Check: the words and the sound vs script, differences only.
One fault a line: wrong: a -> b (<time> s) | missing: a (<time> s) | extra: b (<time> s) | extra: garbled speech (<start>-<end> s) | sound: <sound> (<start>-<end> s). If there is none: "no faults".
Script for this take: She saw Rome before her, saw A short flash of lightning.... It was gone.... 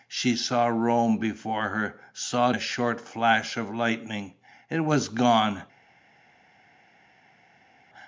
no faults